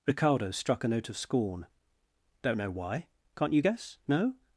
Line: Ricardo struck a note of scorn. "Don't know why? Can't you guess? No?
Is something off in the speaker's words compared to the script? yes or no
no